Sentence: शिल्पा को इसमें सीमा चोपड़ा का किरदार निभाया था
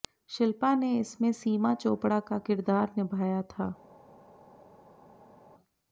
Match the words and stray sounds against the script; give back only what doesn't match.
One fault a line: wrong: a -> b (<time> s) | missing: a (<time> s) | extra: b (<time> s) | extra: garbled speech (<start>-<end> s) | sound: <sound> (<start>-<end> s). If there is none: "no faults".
wrong: को -> ने (0.8 s)